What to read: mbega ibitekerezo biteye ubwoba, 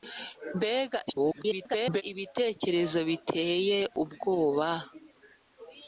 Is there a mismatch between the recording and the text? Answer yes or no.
yes